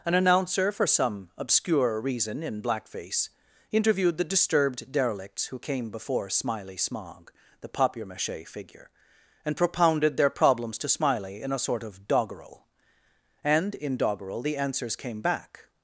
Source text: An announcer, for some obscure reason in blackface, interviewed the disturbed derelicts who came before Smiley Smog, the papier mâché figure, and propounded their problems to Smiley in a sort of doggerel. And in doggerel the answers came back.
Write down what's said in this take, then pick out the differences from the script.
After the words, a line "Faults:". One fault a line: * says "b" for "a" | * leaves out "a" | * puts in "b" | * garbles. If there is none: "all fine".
An announcer, for some obscure reason in blackface, interviewed the disturbed derelicts who came before Smiley Smog, the papier mâché figure, and propounded their problems to Smiley in a sort of doggerel. And in doggerel the answers came back.
Faults:
all fine